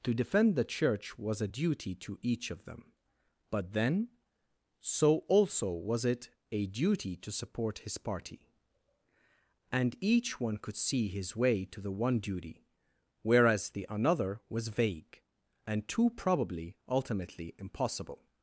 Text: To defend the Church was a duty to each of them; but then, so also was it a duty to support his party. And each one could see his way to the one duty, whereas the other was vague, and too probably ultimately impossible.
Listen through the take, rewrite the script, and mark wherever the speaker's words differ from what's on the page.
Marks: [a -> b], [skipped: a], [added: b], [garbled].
To defend the Church was a duty to each of them; but then, so also was it a duty to support his party. And each one could see his way to the one duty, whereas the [other -> another] was vague, and too probably ultimately impossible.